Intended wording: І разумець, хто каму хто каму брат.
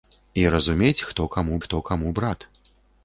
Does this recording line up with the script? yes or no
yes